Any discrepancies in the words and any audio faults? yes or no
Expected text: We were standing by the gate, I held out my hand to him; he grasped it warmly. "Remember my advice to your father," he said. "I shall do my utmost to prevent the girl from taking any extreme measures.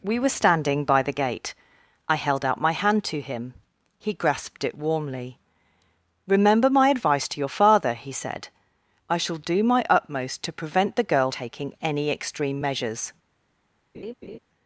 yes